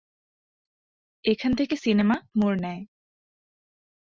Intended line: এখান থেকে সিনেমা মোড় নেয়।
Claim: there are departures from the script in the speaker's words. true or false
false